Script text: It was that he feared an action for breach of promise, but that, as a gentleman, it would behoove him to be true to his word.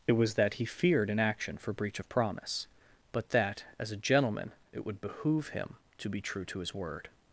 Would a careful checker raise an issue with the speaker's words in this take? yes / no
no